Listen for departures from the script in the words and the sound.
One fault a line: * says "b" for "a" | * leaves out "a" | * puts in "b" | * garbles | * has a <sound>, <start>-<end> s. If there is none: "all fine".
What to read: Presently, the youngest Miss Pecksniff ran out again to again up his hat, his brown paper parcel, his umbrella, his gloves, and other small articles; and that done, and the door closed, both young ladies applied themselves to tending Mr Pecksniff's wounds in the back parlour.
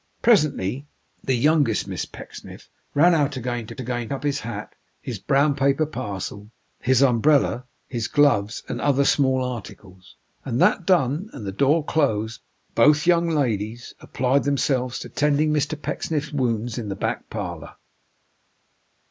all fine